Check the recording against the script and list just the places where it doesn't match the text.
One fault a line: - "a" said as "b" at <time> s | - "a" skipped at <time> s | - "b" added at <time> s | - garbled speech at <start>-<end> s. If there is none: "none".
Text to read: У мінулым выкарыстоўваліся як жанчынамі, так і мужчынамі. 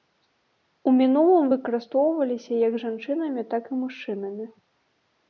none